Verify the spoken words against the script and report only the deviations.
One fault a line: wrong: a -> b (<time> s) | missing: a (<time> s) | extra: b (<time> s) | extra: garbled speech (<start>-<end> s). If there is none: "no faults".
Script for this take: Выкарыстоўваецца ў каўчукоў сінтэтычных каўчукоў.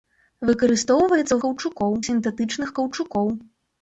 no faults